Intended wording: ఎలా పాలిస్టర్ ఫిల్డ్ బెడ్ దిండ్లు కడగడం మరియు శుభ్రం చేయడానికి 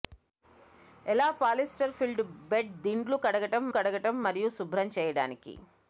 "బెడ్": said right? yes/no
yes